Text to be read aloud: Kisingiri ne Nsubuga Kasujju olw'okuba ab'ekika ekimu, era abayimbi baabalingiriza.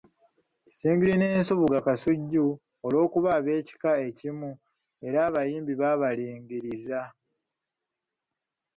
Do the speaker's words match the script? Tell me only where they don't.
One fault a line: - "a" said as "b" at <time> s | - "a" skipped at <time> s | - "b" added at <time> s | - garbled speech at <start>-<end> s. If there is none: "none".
none